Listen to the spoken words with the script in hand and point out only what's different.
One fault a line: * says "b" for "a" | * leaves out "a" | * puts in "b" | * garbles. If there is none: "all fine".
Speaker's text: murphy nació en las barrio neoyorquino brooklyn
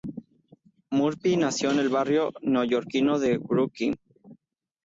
* says "el" for "las"
* puts in "de"